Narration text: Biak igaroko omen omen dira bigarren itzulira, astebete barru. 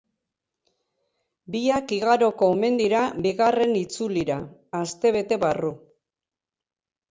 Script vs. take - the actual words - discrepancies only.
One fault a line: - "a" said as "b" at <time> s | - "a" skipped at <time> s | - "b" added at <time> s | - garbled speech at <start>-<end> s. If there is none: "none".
- "omen" skipped at 2.8 s